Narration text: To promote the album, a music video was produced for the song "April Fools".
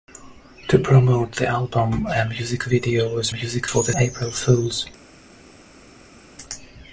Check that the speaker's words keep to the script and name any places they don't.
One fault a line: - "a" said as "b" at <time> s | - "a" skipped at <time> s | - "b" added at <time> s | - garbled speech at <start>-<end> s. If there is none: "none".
- "produced" said as "music" at 3.3 s
- "song" skipped at 3.9 s